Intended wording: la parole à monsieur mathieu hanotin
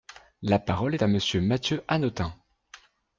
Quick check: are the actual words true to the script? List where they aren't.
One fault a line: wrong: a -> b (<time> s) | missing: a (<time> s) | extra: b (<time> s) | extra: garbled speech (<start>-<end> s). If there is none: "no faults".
no faults